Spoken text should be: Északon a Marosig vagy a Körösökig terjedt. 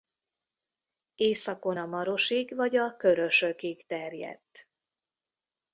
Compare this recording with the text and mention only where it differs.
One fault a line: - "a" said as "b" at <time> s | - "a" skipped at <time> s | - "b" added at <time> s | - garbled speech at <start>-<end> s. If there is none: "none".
none